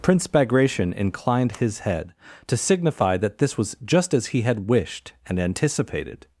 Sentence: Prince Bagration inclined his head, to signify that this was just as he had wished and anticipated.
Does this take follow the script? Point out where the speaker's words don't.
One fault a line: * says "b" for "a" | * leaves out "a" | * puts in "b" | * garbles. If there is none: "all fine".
all fine